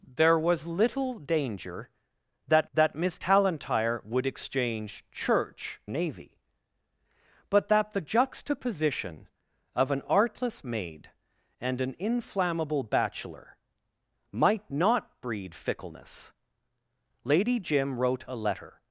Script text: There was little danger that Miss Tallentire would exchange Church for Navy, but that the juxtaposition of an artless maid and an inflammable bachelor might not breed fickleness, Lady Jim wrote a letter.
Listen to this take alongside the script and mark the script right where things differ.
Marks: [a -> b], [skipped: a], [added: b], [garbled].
There was little danger that [added: that] Miss Tallentire would exchange Church [skipped: for] Navy, but that the juxtaposition of an artless maid and an inflammable bachelor might not breed fickleness, Lady Jim wrote a letter.